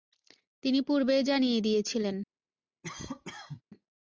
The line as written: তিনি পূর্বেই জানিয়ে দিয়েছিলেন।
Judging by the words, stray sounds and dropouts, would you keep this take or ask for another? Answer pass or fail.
fail